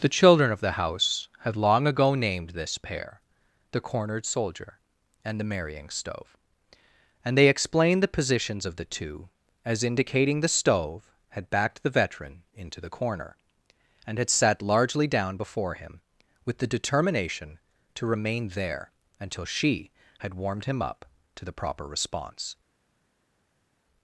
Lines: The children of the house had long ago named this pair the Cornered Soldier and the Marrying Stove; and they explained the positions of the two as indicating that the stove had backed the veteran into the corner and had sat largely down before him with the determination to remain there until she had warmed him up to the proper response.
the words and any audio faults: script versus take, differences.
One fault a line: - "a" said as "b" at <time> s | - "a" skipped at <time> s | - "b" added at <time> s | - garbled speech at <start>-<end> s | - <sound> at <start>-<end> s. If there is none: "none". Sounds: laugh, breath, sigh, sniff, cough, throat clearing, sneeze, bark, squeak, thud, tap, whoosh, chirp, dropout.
- "that" skipped at 10.4 s